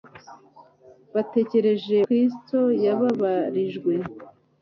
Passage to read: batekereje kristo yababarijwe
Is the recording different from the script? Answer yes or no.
no